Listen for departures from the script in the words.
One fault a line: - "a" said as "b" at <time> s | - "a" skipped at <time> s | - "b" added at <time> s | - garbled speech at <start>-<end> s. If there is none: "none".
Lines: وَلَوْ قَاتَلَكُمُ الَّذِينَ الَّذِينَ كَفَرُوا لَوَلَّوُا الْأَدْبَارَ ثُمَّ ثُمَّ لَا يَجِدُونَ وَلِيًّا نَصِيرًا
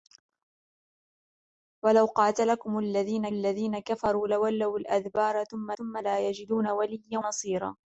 none